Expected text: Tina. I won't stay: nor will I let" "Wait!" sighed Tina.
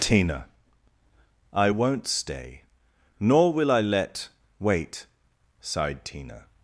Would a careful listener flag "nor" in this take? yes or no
no